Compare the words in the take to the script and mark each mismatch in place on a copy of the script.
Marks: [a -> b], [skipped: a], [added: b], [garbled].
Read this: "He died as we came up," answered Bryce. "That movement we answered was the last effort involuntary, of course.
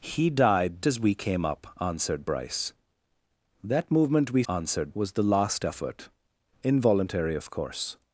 "He died as we came up," answered Bryce. "That movement we answered was the last effort involuntary, of course.